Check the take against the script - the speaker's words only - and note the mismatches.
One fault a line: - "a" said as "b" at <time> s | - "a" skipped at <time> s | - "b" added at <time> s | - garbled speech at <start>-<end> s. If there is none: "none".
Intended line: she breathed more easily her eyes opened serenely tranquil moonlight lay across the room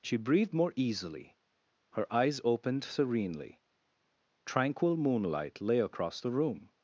none